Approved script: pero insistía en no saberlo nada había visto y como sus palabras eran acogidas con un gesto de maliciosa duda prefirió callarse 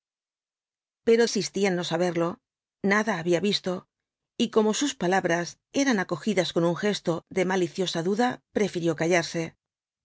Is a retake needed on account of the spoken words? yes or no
no